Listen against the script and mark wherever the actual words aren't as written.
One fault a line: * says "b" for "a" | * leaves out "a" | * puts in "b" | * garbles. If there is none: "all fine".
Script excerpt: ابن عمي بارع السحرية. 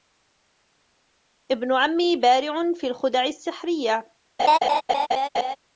* puts in "في الخدع"